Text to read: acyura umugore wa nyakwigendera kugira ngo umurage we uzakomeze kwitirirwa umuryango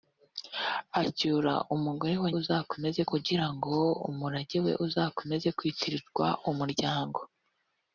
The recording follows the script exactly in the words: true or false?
false